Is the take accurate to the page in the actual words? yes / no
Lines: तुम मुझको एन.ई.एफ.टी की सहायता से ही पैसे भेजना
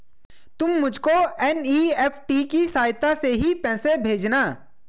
yes